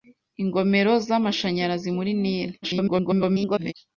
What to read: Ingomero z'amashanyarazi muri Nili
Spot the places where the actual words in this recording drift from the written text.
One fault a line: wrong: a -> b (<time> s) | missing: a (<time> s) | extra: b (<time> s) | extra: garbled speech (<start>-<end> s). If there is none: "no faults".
extra: garbled speech (2.6-3.7 s)